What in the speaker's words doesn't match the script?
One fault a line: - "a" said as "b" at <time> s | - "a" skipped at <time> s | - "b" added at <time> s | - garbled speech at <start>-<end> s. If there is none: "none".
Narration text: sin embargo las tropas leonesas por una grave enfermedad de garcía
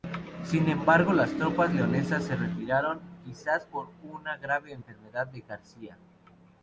- "se retiraron quizás" added at 2.2 s